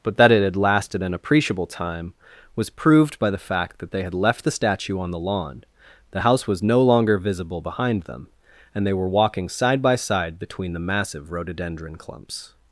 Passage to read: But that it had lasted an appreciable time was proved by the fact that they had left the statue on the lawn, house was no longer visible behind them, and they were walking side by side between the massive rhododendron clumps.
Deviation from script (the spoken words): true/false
true